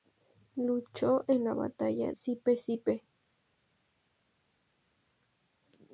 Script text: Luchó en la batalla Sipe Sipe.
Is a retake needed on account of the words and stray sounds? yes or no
no